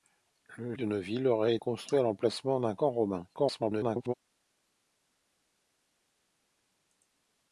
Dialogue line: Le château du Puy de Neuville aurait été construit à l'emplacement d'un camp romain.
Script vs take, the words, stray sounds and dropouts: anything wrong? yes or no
yes